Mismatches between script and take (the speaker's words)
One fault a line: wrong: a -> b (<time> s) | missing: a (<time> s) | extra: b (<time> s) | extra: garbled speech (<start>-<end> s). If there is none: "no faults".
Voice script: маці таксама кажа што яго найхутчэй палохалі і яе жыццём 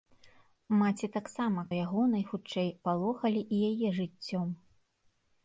missing: кажа што (1.6 s)